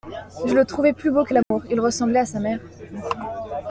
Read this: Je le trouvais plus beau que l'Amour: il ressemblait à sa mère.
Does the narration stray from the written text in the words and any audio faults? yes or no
yes